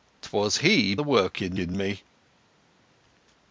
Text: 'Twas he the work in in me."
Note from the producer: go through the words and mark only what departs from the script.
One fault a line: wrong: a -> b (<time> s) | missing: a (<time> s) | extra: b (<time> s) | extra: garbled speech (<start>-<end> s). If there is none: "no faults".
no faults